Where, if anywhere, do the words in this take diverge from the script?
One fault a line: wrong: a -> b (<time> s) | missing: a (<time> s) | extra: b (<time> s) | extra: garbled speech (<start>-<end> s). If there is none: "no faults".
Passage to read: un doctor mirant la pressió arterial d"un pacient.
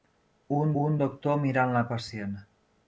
extra: un (0.8 s)
missing: pressió arterial d"un (1.8 s)